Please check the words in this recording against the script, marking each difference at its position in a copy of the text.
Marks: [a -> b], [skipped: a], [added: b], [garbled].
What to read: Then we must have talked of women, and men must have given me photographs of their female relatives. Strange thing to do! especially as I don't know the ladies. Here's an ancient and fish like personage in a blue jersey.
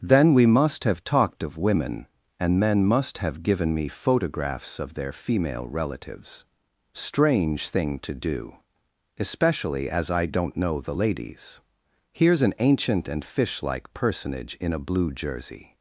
Then we must have talked of women, and men must have given me photographs of their female relatives. Strange thing to do! especially as I don't know the ladies. Here's an ancient and fish like personage in a blue jersey.